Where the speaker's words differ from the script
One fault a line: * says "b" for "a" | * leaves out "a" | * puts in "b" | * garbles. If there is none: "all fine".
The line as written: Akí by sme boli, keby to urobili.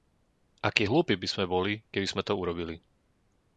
* puts in "hlúpi"
* puts in "sme"